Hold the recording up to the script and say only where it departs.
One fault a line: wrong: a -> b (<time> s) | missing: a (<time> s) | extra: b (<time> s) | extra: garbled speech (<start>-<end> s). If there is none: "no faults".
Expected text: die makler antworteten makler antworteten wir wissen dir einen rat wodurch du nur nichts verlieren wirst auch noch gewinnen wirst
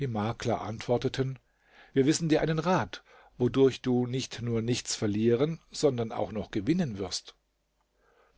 missing: makler antworteten (1.4 s)
extra: nicht (4.1 s)
wrong: wirst -> sondern (5.7 s)